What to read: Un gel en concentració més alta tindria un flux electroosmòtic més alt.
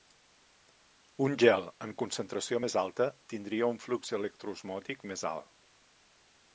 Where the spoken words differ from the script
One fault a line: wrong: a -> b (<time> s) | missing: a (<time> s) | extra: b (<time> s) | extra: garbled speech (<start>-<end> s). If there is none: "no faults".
no faults